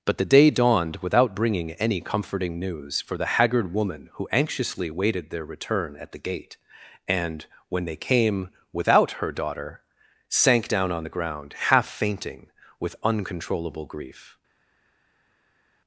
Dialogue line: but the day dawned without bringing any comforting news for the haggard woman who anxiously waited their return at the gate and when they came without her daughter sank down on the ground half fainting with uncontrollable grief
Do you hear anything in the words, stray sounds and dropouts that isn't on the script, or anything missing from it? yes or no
no